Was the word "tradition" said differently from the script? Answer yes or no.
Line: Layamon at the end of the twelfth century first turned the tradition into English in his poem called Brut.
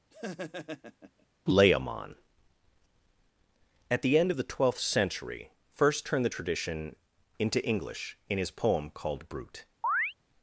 no